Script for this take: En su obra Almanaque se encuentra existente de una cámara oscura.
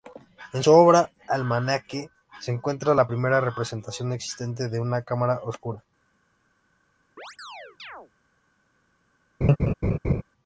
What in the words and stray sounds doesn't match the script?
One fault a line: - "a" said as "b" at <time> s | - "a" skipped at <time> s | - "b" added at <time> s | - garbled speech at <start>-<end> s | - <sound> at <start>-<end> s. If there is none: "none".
- "la primera representación" added at 2.9 s
- chirp at 7.2-8.1 s
- laugh at 9.4-10.2 s